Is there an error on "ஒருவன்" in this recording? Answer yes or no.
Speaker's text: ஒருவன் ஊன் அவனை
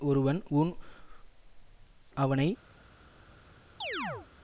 no